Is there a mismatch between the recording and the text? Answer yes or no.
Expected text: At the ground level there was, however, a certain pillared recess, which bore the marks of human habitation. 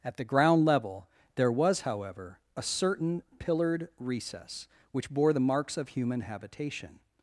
no